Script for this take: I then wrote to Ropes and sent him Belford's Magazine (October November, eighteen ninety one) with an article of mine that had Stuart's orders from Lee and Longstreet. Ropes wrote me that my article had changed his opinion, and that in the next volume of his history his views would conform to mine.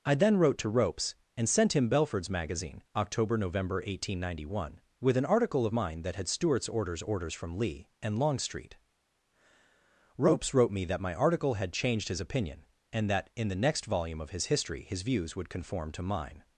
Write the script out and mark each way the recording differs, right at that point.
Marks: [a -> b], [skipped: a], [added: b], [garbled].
I then wrote to Ropes and sent him Belford's Magazine (October November, eighteen ninety one) with an article of mine that had Stuart's orders [added: orders] from Lee and Longstreet. Ropes wrote me that my article had changed his opinion, and that in the next volume of his history his views would conform to mine.